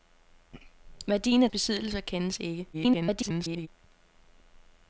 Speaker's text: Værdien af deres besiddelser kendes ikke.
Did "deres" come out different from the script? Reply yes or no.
yes